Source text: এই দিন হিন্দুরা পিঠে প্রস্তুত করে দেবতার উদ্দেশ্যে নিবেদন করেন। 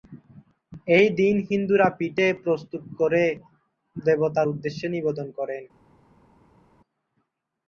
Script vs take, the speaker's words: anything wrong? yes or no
no